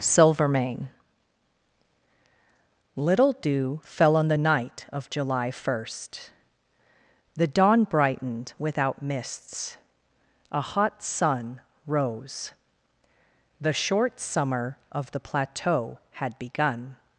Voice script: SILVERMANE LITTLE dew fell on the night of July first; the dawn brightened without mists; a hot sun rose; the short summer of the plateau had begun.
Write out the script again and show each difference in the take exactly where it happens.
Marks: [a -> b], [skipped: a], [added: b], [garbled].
SILVERMANE LITTLE dew fell on the night of July first; the dawn brightened without mists; a hot sun rose; the short summer of the plateau had begun.